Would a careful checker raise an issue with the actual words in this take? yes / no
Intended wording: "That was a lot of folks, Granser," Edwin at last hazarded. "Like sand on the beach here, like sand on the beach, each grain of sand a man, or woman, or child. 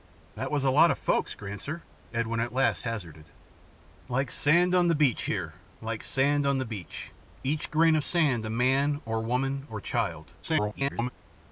yes